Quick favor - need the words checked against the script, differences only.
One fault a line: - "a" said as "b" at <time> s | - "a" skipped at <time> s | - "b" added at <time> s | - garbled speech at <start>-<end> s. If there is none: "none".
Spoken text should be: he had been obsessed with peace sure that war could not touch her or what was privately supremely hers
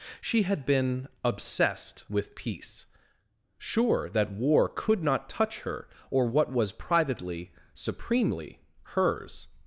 - "he" said as "she" at 0.2 s